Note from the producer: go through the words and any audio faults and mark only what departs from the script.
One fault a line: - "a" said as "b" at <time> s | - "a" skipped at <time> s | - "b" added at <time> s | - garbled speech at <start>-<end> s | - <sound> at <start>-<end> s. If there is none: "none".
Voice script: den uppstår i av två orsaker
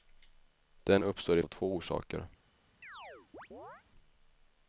- chirp at 2.8-3.8 s